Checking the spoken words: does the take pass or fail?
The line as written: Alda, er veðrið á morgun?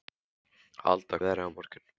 pass